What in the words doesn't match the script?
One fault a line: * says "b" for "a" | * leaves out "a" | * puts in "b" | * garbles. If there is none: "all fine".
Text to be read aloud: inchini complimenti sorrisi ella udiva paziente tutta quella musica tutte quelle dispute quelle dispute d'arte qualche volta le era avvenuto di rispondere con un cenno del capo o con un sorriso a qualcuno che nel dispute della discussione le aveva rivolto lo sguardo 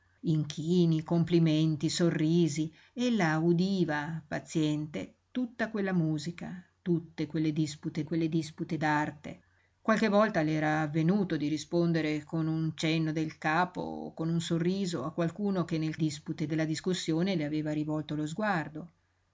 all fine